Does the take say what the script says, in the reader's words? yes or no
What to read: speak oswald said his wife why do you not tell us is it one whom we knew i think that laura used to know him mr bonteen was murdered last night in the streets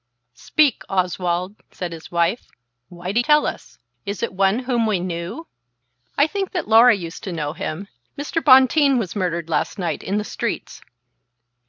no